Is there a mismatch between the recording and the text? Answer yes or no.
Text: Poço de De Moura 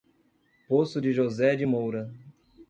yes